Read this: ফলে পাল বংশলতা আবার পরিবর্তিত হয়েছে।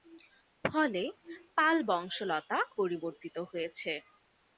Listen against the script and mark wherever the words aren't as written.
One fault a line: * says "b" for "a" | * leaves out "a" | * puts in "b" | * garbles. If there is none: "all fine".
* leaves out "আবার"